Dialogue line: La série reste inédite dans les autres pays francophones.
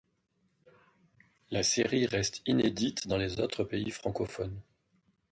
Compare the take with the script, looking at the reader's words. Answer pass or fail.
pass